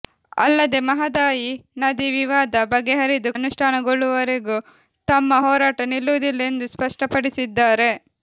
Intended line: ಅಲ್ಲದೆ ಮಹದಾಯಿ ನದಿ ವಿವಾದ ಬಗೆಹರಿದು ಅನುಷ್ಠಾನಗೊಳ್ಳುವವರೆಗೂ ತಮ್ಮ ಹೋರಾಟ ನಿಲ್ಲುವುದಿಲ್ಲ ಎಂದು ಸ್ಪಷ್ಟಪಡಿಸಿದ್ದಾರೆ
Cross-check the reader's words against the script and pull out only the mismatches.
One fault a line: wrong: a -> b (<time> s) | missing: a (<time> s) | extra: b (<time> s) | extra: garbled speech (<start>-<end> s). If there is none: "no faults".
no faults